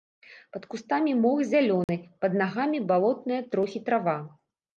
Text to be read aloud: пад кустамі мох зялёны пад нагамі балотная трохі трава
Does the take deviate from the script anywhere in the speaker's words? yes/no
no